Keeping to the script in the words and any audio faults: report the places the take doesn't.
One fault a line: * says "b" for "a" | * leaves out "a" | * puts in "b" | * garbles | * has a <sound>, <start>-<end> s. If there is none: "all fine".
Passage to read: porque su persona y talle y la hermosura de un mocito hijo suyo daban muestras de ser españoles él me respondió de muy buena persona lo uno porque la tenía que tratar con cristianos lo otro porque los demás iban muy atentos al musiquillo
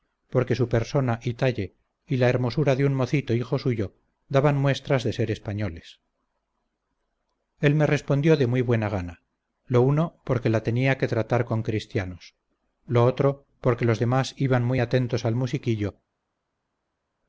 * says "gana" for "persona"